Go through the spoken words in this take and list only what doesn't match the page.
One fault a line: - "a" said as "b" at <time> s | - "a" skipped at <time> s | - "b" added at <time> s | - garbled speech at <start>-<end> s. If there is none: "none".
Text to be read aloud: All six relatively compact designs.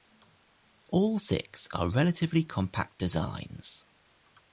- "are" added at 1.7 s